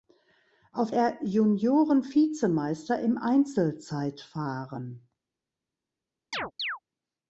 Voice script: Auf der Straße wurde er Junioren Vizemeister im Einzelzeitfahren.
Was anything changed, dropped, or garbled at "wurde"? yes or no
yes